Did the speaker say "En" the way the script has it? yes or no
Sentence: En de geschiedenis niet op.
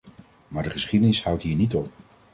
no